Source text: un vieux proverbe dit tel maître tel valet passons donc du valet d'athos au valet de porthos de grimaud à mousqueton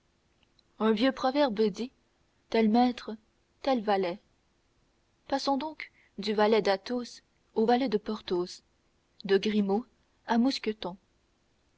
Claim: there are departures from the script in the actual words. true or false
false